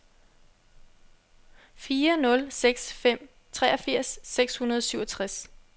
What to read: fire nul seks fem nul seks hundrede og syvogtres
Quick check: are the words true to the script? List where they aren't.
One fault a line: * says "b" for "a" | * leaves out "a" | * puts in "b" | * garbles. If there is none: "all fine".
* says "treogfirs" for "nul"